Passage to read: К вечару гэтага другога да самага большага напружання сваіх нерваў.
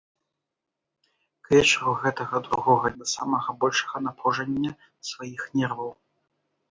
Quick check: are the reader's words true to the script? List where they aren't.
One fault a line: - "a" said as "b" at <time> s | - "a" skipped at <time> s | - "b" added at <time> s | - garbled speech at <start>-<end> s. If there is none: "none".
none